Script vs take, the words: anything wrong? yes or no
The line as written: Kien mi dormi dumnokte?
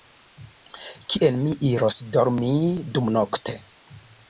yes